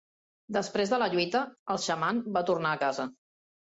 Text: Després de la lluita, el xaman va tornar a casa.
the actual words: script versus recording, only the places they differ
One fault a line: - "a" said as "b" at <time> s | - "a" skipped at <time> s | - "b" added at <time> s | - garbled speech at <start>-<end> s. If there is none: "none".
none